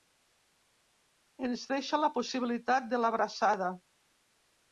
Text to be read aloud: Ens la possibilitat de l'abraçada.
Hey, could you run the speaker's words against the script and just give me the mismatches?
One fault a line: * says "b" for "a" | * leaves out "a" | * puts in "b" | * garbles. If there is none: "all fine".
* puts in "deixa"